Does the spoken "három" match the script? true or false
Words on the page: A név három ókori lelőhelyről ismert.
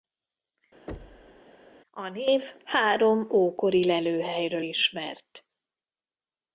true